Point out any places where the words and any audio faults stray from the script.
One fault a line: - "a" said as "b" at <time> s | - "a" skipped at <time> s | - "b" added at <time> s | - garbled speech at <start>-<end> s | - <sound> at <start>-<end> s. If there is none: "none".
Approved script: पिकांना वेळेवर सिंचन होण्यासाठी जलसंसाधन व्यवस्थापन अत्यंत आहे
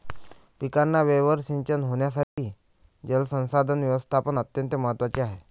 - dropout at 2.2-2.4 s
- "महत्त्वाचे" added at 4.8 s